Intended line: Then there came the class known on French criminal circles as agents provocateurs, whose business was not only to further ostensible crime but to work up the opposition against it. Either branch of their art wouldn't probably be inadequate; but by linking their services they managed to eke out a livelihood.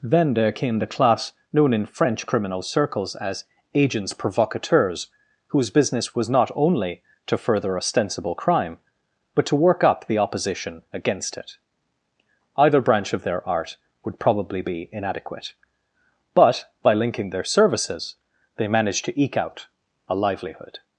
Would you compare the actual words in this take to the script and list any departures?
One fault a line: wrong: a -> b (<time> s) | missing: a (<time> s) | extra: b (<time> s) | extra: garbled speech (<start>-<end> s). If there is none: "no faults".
wrong: on -> in (1.7 s)
wrong: wouldn't -> would (14.0 s)